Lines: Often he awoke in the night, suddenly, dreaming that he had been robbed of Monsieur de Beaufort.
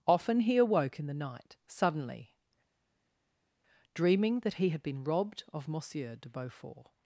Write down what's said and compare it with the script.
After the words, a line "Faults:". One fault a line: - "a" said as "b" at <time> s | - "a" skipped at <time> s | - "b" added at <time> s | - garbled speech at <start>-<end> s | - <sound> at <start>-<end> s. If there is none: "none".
Often he awoke in the night, suddenly, dreaming that he had been robbed of Monsieur de Beaufort.
Faults:
none